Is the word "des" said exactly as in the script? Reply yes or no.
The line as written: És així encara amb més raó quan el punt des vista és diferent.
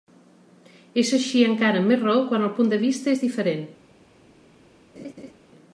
no